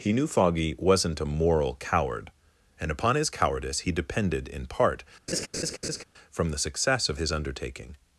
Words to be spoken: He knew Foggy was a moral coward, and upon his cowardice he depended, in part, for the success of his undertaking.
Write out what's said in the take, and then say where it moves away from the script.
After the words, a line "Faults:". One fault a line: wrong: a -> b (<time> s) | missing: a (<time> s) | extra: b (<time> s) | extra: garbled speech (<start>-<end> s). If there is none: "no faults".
He knew Foggy wasn't a moral coward, and upon his cowardice he depended, in part, from the success of his undertaking.
Faults:
wrong: was -> wasn't (0.8 s)
wrong: for -> from (6.3 s)